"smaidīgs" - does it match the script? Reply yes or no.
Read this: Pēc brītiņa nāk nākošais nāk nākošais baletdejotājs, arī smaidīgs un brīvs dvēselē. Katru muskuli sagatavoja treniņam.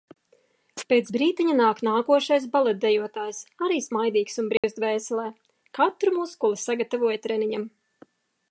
yes